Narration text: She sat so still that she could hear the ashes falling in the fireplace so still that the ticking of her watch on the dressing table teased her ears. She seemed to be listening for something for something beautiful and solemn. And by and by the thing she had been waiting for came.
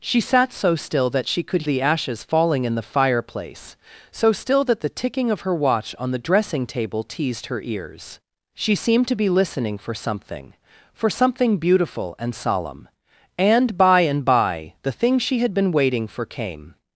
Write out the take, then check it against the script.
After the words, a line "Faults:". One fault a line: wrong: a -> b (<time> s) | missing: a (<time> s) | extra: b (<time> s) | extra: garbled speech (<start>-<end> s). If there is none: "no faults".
She sat so still that she could the ashes falling in the fireplace so still that the ticking of her watch on the dressing table teased her ears. She seemed to be listening for something for something beautiful and solemn. And by and by the thing she had been waiting for came.
Faults:
missing: hear (1.6 s)